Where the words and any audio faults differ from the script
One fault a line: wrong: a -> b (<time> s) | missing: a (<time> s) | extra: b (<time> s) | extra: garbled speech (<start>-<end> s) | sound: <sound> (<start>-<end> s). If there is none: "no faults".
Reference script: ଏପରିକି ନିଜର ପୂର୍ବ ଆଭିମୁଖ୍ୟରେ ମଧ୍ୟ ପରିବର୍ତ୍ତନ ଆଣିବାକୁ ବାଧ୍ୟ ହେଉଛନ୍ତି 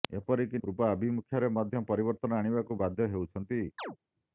missing: ନିଜର (0.6 s)
sound: chirp (3.8-4.0 s)